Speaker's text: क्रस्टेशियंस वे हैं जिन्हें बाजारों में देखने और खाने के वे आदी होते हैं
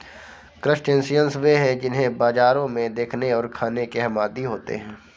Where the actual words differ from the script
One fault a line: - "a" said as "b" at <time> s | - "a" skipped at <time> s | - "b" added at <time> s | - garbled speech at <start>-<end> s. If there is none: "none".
- "वे" said as "हम" at 4.0 s